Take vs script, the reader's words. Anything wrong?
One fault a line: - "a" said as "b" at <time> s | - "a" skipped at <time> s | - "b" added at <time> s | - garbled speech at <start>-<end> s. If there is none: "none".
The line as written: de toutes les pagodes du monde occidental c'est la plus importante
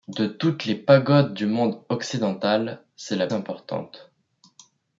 - "plus" skipped at 3.3 s